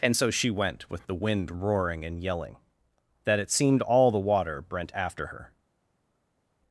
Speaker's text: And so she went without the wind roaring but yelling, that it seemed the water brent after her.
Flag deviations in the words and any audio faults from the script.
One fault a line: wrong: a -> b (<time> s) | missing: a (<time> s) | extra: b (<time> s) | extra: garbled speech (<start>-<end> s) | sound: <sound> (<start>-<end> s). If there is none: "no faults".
wrong: without -> with (0.9 s)
wrong: but -> and (2.0 s)
extra: all (3.8 s)